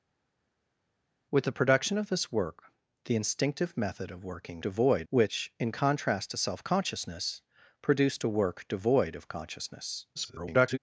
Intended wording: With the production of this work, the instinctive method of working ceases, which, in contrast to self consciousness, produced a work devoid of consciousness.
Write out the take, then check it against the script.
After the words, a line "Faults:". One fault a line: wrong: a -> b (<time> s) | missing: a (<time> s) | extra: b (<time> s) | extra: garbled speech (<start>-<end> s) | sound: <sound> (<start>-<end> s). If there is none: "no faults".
With the production of this work, the instinctive method of working devoid, which, in contrast to self consciousness, produced a work devoid of consciousness. [garbled]
Faults:
wrong: ceases -> devoid (4.6 s)
extra: garbled speech (10.2-10.8 s)